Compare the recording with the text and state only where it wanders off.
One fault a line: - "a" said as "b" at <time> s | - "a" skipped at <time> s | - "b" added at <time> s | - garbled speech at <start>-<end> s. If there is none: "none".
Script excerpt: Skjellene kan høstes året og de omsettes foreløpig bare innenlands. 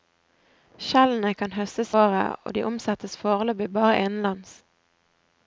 none